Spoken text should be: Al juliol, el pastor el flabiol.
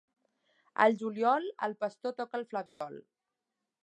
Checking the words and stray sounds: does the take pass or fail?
fail